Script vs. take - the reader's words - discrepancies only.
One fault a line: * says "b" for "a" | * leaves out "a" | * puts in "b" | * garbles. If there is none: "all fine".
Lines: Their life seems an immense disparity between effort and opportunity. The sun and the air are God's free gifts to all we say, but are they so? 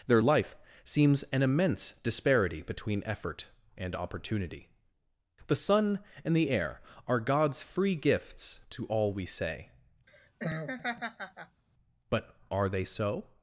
all fine